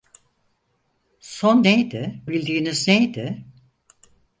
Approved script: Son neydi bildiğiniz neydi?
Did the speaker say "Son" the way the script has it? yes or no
yes